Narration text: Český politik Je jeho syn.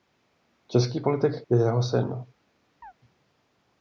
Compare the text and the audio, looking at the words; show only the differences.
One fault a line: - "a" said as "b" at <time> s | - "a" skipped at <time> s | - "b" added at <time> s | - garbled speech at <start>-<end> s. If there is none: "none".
none